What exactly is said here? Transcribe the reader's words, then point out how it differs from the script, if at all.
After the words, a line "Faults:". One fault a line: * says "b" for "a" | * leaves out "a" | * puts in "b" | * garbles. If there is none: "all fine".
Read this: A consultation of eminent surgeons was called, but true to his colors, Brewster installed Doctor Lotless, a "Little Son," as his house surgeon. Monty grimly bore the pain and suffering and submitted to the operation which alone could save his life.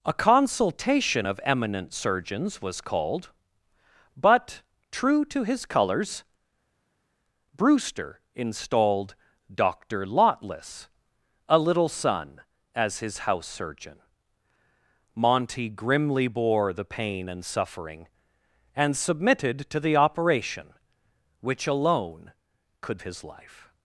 A consultation of eminent surgeons was called, but true to his colors, Brewster installed Doctor Lotless, a "Little Son," as his house surgeon. Monty grimly bore the pain and suffering and submitted to the operation which alone could his life.
Faults:
* leaves out "save"